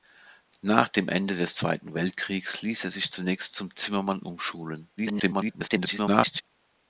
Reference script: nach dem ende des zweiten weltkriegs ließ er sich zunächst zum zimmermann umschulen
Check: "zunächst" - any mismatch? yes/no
no